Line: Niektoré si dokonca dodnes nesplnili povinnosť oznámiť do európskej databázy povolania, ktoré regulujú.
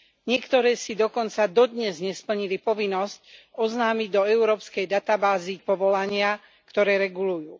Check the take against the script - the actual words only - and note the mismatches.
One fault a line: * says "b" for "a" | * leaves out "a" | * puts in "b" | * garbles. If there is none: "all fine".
all fine